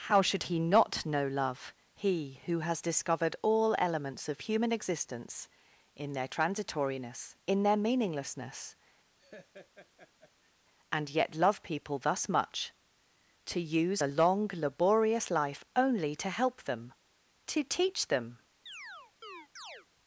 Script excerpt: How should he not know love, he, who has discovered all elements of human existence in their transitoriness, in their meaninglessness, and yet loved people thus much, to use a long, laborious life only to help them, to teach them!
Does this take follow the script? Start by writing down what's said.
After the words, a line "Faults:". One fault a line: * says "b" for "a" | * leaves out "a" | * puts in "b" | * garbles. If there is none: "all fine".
How should he not know love, he, who has discovered all elements of human existence in their transitoriness, in their meaninglessness, and yet love people thus much, to use a long, laborious life only to help them, to teach them!
Faults:
* says "love" for "loved"